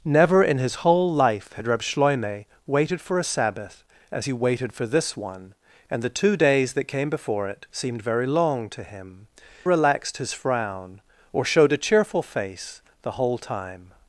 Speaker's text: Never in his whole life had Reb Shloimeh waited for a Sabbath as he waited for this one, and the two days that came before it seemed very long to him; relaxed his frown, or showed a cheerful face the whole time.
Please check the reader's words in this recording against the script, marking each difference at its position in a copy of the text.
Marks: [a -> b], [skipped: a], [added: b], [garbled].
Never in his whole life had Reb Shloimeh waited for a Sabbath as he waited for this one, and the two days that came before it seemed very long to him; relaxed his frown, or showed a cheerful face the whole time.